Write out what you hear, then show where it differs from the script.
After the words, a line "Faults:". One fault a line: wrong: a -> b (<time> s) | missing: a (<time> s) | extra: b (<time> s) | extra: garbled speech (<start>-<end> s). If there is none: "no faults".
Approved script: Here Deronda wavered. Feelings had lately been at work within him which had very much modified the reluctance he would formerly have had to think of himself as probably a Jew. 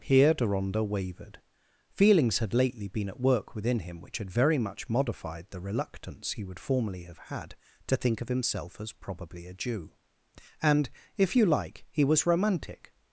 Here Deronda wavered. Feelings had lately been at work within him which had very much modified the reluctance he would formerly have had to think of himself as probably a Jew. And, if you like, he was romantic
Faults:
extra: And if you like he was romantic (10.6 s)